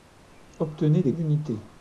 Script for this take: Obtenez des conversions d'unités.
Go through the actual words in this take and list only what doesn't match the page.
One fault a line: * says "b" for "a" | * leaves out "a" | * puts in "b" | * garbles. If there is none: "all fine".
* leaves out "conversions"